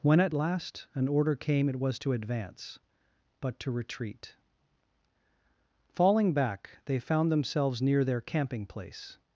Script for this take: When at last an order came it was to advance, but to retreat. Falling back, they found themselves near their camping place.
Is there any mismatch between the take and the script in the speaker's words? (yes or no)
no